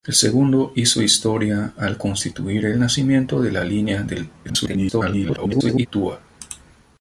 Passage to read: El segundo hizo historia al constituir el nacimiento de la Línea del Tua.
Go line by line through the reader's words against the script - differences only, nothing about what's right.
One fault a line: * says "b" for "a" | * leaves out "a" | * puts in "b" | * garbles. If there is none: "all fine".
* garbles